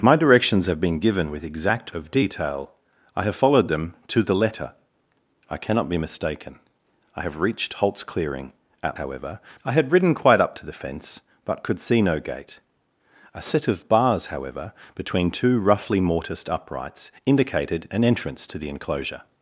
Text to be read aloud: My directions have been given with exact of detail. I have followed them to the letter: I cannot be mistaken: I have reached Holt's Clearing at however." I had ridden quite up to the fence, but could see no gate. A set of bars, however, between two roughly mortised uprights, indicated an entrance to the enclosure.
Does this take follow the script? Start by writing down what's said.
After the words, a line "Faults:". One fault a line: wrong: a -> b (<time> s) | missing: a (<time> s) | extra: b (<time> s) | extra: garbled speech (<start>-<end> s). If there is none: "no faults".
My directions have been given with exact of detail. I have followed them to the letter: I cannot be mistaken: I have reached Holt's Clearing at however." I had ridden quite up to the fence, but could see no gate. A set of bars, however, between two roughly mortised uprights, indicated an entrance to the enclosure.
Faults:
no faults